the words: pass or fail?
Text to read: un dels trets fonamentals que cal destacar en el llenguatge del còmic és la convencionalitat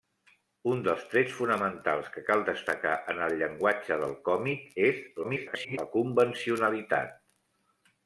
fail